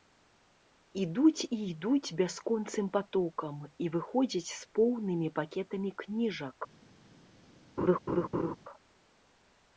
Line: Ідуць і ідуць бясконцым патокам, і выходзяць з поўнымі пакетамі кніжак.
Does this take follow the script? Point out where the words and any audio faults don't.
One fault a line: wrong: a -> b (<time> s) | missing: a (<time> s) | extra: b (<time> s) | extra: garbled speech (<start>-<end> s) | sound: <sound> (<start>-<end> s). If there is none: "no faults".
sound: laugh (7.8-8.6 s)